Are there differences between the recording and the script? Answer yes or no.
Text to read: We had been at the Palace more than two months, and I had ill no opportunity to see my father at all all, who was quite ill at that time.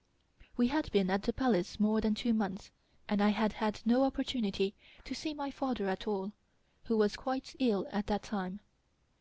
yes